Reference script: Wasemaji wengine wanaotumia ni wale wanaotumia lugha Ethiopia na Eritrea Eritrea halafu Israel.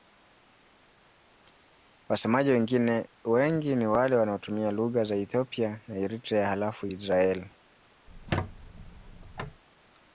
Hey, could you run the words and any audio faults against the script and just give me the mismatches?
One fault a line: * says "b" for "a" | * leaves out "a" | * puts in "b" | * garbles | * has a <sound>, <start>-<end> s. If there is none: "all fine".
* says "wengi" for "wanaotumia"
* puts in "za"
* leaves out "Eritrea"
* has a squeak, 8.1-9.6 s